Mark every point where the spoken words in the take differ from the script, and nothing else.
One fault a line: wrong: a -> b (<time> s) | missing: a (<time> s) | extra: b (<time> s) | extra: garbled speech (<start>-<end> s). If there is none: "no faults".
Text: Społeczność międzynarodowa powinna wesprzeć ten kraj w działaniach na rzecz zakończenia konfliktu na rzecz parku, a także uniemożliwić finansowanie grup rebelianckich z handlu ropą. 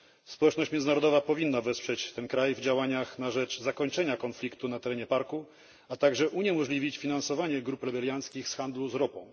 wrong: rzecz -> terenie (4.8 s)